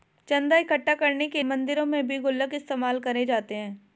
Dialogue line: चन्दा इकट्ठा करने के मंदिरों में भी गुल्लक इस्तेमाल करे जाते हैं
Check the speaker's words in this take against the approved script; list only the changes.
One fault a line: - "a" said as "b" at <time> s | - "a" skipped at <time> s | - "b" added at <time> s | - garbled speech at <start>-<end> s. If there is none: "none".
none